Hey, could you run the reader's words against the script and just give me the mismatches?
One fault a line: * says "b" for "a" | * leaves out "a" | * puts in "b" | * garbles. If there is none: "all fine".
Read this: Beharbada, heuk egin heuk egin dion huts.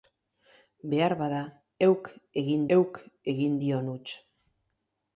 all fine